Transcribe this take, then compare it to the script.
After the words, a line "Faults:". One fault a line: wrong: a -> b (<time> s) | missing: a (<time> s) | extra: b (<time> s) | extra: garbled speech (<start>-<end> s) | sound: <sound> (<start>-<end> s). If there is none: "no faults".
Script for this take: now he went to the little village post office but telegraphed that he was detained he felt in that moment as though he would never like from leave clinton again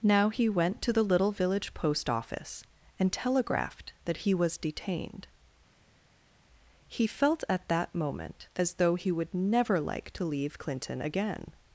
now he went to the little village post office and telegraphed that he was detained he felt at that moment as though he would never like to leave clinton again
Faults:
wrong: but -> and (3.0 s)
wrong: in -> at (7.5 s)
wrong: from -> to (10.1 s)